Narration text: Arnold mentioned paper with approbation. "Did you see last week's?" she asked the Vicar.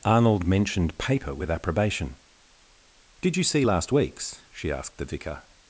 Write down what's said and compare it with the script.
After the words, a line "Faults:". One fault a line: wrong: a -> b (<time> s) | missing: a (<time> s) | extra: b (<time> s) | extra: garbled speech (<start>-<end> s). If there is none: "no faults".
Arnold mentioned paper with approbation. "Did you see last week's?" she asked the Vicar.
Faults:
no faults